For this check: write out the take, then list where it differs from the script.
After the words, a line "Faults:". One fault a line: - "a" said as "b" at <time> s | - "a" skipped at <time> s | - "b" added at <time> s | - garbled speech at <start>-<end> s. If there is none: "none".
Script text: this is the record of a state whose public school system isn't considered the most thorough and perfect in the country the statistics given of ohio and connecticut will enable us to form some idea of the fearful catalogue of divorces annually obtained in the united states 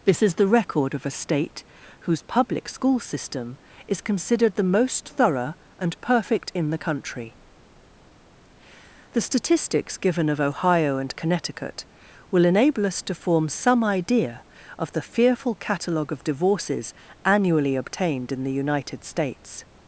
this is the record of a state whose public school system is considered the most thorough and perfect in the country the statistics given of ohio and connecticut will enable us to form some idea of the fearful catalogue of divorces annually obtained in the united states
Faults:
- "isn't" said as "is" at 3.9 s